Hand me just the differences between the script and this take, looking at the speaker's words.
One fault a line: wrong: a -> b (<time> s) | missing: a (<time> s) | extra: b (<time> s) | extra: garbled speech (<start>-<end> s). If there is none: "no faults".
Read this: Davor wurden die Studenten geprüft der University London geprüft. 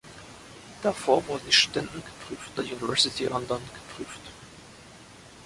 no faults